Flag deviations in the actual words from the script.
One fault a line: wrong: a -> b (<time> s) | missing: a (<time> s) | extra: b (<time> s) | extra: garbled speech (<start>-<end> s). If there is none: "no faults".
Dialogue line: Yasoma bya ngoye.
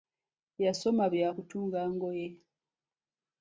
extra: kutunga (1.3 s)